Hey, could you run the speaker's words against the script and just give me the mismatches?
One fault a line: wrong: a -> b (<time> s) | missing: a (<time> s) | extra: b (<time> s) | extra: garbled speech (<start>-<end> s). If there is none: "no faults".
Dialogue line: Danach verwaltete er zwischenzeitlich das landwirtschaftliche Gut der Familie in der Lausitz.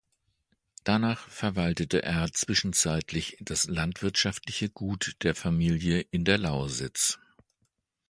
no faults